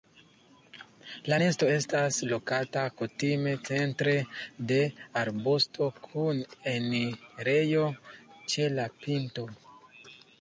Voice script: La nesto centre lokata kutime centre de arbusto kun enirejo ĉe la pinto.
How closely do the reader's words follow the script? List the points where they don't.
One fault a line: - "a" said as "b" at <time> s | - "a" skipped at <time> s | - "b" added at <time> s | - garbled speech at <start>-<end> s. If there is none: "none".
- "centre" said as "estas" at 1.7 s